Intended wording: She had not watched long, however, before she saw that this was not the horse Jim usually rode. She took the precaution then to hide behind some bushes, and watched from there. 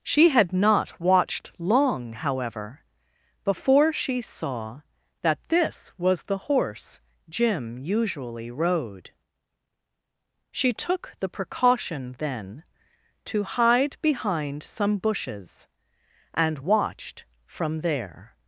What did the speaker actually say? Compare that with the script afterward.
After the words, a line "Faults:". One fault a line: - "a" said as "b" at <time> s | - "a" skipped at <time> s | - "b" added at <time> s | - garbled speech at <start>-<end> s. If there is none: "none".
She had not watched long, however, before she saw that this was the horse Jim usually rode. She took the precaution then to hide behind some bushes, and watched from there.
Faults:
- "not" skipped at 6.2 s